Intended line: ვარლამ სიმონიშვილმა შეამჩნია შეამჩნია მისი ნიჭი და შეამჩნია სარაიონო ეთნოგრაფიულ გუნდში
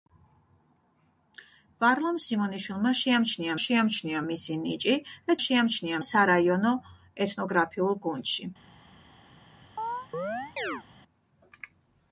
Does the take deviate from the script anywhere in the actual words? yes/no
no